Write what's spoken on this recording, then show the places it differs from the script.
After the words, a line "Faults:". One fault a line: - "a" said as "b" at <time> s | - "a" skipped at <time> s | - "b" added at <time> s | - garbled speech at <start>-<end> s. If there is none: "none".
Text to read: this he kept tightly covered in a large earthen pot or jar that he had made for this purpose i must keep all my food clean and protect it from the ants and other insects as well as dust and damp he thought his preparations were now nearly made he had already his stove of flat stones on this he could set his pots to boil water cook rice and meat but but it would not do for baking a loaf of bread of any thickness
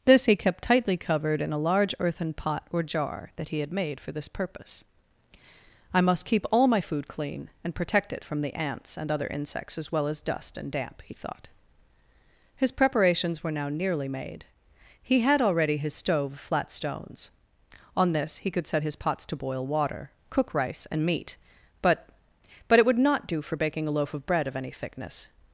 this he kept tightly covered in a large earthen pot or jar that he had made for this purpose i must keep all my food clean and protect it from the ants and other insects as well as dust and damp he thought his preparations were now nearly made he had already his stove of flat stones on this he could set his pots to boil water cook rice and meat but but it would not do for baking a loaf of bread of any thickness
Faults:
none